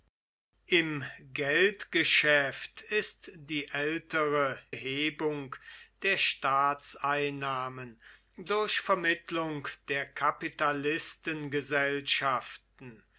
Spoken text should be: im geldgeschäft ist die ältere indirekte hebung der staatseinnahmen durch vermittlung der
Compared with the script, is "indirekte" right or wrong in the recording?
wrong